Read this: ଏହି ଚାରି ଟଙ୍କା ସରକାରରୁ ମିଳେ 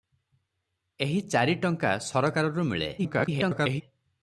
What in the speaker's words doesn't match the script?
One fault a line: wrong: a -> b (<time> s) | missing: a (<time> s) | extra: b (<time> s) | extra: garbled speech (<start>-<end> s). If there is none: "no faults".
extra: garbled speech (3.0-3.8 s)